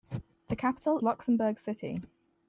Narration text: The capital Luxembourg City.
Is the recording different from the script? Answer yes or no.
no